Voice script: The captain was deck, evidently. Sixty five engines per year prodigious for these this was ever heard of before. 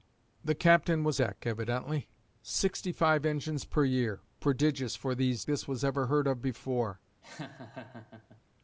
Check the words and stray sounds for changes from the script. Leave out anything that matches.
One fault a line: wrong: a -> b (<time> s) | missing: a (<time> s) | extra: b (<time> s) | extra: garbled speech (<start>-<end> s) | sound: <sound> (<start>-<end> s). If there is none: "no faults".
sound: laugh (7.2-8.4 s)